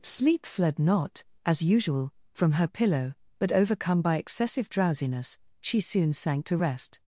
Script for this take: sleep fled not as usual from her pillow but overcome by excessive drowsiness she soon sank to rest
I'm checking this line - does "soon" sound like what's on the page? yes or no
yes